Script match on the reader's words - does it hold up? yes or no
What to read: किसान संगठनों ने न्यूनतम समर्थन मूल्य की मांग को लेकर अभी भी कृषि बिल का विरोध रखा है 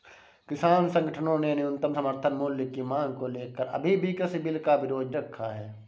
yes